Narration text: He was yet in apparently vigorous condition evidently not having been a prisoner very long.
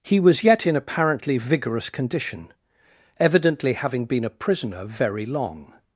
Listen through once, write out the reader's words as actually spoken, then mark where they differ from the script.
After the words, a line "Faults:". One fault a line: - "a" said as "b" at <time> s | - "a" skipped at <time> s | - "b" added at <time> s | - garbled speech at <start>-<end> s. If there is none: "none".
He was yet in apparently vigorous condition evidently having been a prisoner very long.
Faults:
- "not" skipped at 3.7 s